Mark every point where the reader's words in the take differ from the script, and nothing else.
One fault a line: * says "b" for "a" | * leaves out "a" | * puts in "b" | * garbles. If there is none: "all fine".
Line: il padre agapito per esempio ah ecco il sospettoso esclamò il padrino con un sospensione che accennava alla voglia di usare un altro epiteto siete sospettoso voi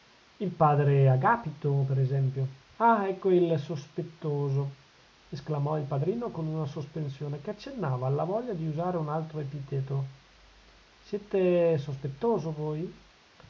* says "una" for "un"